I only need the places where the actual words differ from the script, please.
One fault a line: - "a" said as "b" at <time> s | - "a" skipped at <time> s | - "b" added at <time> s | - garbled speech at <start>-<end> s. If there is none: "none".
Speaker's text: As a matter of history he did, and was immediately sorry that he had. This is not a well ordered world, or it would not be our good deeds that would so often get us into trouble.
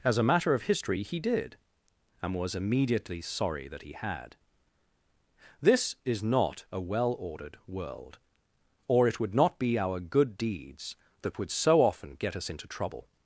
none